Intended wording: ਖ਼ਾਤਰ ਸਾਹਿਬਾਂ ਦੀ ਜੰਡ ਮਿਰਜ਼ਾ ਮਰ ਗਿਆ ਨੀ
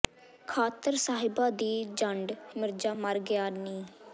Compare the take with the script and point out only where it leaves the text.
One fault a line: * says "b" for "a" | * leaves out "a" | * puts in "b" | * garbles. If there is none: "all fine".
all fine